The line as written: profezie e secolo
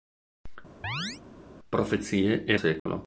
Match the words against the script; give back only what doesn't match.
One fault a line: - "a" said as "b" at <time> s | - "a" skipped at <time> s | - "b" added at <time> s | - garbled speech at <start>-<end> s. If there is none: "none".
none